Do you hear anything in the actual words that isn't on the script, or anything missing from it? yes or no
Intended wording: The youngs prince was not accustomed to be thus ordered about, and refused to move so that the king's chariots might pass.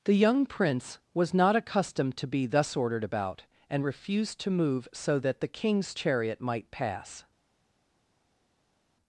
yes